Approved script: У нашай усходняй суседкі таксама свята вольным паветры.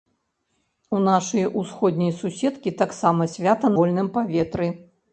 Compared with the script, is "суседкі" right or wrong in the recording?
right